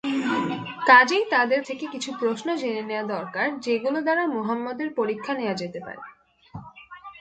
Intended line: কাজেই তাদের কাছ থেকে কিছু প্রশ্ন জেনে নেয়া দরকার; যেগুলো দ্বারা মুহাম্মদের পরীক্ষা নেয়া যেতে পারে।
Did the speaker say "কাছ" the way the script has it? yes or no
no